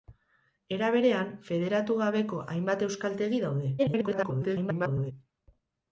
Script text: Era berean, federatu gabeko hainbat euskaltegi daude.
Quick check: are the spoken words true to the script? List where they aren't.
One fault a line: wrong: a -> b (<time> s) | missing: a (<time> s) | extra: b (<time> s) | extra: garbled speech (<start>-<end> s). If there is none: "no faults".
extra: garbled speech (3.8-5.1 s)